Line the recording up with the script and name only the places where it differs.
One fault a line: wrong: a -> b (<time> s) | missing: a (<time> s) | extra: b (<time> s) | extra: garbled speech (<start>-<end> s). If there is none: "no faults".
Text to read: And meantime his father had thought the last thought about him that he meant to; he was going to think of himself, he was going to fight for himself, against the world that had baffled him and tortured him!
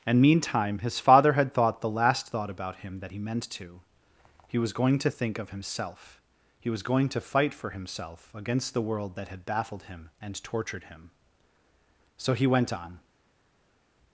extra: So he went on (12.2 s)